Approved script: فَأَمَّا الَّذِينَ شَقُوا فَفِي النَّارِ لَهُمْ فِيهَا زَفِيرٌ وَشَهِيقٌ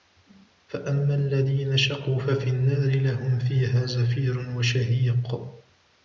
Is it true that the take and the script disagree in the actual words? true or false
false